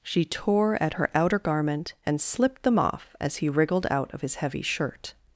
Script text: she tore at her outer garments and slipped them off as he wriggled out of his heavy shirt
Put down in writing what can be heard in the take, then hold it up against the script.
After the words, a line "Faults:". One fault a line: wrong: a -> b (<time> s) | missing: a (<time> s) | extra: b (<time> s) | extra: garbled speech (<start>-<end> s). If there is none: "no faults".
she tore at her outer garment and slipped them off as he wriggled out of his heavy shirt
Faults:
wrong: garments -> garment (1.4 s)